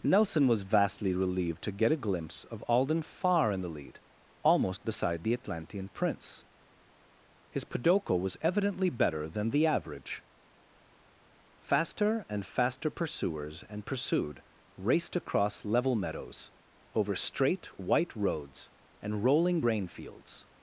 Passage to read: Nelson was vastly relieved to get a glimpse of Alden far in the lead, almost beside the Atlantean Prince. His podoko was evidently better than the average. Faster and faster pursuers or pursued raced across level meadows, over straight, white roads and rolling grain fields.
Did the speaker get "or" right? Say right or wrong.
wrong